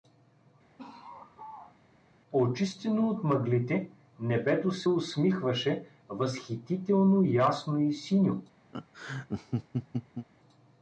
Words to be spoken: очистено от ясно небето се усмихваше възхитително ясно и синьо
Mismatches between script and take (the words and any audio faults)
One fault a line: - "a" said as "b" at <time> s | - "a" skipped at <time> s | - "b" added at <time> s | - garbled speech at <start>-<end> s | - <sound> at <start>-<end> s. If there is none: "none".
- laugh at 0.8-1.8 s
- "ясно" said as "мъглите" at 3.2 s
- laugh at 8.7-10.3 s